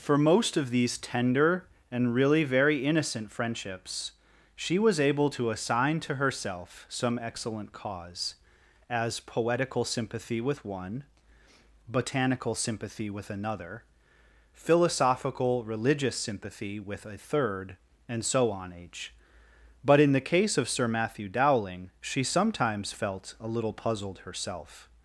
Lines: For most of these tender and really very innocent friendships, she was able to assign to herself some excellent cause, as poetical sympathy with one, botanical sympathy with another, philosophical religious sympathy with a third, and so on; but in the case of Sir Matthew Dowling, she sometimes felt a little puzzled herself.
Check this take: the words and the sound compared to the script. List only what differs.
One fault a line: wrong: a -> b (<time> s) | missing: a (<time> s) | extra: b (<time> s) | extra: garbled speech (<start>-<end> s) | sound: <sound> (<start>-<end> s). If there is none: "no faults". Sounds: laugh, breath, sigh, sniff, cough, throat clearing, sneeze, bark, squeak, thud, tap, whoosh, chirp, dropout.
extra: h (18.7 s)